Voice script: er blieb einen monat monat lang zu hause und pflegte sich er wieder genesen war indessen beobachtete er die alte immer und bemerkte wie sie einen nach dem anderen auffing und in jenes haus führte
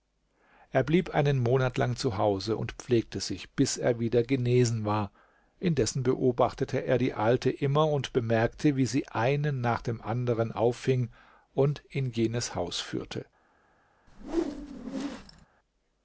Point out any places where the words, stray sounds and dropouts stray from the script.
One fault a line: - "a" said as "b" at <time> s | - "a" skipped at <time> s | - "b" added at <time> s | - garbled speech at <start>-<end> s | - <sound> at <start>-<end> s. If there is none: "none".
- "monat" skipped at 1.8 s
- "bis" added at 3.5 s
- whoosh at 14.1-15.5 s